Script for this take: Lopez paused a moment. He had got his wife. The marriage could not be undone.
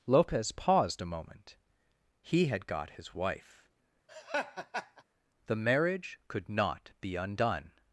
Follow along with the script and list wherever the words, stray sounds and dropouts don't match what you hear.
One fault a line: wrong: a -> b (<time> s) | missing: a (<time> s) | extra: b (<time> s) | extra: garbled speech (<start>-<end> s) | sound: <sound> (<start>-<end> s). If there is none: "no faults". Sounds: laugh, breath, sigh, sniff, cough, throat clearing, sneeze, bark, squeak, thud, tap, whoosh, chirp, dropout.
sound: laugh (4.1-5.0 s)